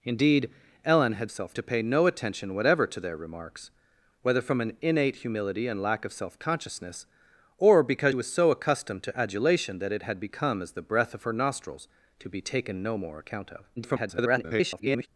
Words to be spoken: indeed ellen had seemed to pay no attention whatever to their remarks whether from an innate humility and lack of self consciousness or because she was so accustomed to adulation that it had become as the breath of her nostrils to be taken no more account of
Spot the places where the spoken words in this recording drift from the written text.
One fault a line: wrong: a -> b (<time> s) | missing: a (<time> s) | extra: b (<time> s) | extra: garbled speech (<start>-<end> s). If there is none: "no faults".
wrong: seemed -> self (1.3 s)
missing: she (8.1 s)
extra: garbled speech (13.8-15.1 s)